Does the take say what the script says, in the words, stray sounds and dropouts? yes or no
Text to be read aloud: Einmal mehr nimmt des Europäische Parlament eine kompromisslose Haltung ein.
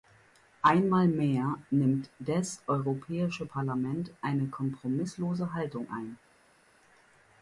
yes